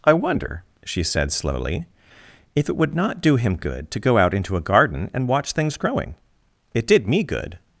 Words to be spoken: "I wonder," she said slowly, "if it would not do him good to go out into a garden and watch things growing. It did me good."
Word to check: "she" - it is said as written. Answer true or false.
true